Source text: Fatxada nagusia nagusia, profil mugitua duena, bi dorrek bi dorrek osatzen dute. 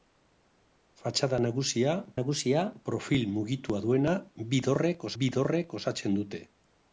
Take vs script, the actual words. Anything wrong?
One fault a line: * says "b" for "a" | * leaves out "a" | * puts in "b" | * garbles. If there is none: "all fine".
all fine